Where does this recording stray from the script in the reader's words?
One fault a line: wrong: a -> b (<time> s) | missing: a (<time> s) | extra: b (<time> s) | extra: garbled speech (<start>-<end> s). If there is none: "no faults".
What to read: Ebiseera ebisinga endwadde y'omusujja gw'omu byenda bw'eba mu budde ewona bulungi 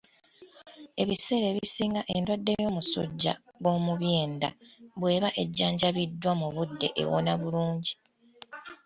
extra: ejjanjabiddwa (5.4 s)